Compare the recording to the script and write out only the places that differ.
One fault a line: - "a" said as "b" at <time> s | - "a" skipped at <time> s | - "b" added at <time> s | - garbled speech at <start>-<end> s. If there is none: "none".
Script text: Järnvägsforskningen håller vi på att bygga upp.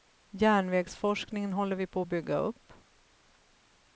none